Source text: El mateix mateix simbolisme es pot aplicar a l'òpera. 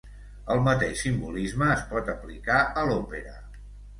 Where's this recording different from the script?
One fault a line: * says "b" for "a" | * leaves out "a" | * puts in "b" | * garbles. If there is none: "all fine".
* leaves out "mateix"